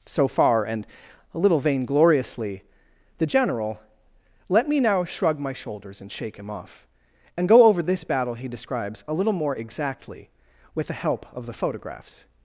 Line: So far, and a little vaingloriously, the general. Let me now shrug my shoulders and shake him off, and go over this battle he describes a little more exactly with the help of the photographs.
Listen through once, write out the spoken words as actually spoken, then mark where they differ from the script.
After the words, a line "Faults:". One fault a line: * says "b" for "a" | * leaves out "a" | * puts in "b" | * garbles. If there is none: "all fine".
So far, and a little vaingloriously, the general. Let me now shrug my shoulders and shake him off, and go over this battle he describes a little more exactly with the help of the photographs.
Faults:
all fine